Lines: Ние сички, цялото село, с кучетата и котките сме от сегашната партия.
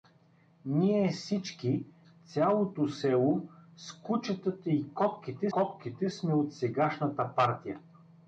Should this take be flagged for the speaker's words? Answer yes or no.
yes